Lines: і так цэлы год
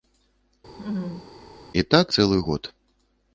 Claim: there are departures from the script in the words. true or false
false